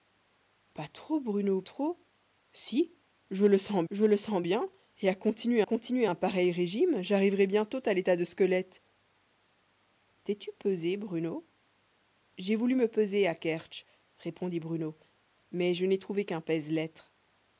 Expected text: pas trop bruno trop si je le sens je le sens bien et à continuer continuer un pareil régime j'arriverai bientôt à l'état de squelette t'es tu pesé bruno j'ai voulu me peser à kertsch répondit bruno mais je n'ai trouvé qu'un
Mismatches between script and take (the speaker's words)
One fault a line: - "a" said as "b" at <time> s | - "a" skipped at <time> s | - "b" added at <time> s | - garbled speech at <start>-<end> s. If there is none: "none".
none